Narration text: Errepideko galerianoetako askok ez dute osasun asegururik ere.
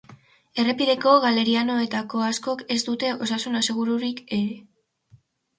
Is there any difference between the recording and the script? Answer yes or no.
no